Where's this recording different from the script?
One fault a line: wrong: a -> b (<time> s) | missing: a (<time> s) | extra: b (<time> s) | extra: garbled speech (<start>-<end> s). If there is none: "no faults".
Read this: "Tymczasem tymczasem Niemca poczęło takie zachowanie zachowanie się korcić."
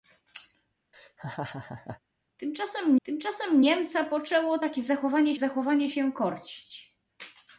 no faults